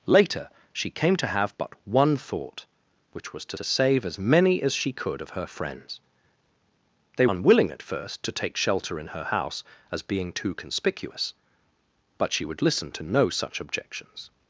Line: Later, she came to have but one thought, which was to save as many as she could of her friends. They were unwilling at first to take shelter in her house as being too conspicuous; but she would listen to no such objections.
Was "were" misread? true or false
true